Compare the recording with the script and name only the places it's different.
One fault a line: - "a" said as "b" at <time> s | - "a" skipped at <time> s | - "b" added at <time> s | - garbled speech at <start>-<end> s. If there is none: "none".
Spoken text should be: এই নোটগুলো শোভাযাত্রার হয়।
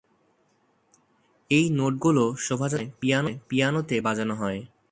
- "সময় পিয়ানোতে বাজানো" added at 3.1 s